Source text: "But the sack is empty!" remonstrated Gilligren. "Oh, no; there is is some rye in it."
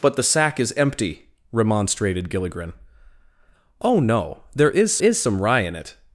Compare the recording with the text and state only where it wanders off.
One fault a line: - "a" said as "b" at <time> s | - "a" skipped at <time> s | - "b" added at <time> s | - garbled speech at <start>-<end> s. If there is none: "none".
none